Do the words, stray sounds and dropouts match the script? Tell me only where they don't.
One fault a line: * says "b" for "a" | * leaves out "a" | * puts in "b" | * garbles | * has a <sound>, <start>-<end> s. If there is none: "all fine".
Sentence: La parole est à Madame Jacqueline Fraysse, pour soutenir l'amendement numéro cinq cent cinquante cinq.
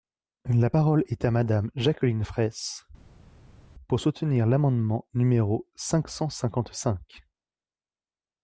all fine